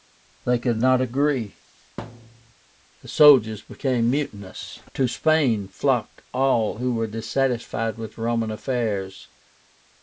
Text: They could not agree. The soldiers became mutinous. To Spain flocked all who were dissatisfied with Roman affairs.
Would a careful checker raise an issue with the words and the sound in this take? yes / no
yes